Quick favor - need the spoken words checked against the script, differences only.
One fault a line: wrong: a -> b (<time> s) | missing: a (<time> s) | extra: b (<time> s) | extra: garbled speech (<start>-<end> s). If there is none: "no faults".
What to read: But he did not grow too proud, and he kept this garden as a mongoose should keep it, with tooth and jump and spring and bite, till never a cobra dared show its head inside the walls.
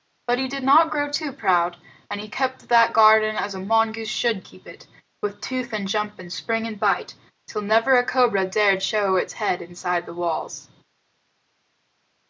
wrong: this -> that (2.7 s)